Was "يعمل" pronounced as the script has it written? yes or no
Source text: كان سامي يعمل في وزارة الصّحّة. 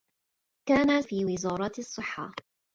no